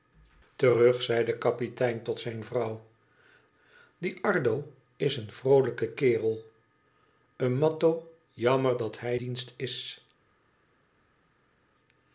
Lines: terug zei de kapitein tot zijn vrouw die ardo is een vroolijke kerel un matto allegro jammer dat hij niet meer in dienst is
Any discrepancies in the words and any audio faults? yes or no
yes